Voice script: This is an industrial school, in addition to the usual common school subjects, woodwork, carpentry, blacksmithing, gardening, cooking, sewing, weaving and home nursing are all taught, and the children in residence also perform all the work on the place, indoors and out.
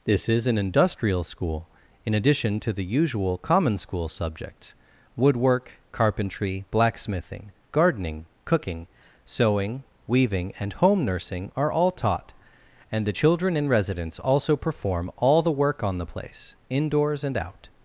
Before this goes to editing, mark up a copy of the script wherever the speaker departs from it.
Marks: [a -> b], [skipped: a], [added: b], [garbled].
This is an industrial school, in addition to the usual common school subjects, woodwork, carpentry, blacksmithing, gardening, cooking, sewing, weaving and home nursing are all taught, and the children in residence also perform all the work on the place, indoors and out.